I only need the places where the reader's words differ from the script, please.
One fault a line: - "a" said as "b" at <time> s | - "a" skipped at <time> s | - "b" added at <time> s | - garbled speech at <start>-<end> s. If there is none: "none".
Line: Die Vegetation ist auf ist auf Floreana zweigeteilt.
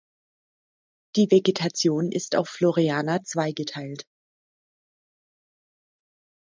- "ist auf" skipped at 2.5 s